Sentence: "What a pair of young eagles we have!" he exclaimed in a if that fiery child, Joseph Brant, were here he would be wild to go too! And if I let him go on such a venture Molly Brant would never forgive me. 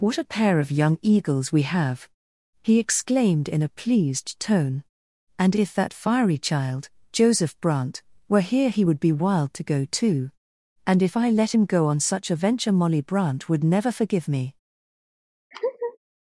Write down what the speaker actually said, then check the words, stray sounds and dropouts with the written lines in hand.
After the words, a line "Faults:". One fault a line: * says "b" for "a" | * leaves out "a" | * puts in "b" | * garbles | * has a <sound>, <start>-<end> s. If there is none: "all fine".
"What a pair of young eagles we have!" he exclaimed in a pleased tone. "And if that fiery child, Joseph Brant, were here he would be wild to go too! And if I let him go on such a venture Molly Brant would never forgive me.
Faults:
* puts in "pleased tone And"
* has a laugh, 15.5-16.0 s